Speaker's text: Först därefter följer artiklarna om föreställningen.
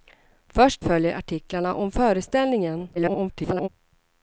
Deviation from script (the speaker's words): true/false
true